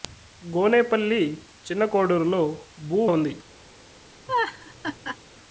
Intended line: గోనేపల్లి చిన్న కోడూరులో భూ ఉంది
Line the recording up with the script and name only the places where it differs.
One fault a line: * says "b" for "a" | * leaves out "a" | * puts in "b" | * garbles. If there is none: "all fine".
all fine